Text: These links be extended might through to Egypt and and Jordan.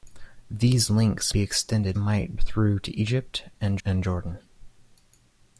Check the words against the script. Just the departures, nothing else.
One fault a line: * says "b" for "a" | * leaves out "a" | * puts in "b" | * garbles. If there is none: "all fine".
all fine